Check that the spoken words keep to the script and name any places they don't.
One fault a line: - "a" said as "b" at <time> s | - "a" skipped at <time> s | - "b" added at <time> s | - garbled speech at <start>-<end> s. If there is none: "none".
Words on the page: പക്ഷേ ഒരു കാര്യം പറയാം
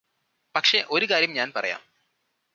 - "ഞാന്" added at 1.3 s